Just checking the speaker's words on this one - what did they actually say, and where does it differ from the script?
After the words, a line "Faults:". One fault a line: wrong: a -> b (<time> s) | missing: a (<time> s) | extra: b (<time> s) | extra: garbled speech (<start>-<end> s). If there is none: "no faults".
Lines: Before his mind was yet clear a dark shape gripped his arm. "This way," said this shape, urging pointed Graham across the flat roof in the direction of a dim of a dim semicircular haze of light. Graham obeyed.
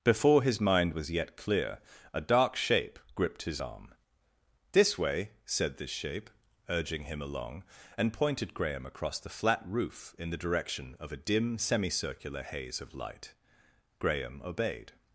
Before his mind was yet clear a dark shape gripped his arm. "This way," said this shape, urging him along, and pointed Graham across the flat roof in the direction of a dim semicircular haze of light. Graham obeyed.
Faults:
extra: him along and (7.0 s)
missing: of a dim (11.6 s)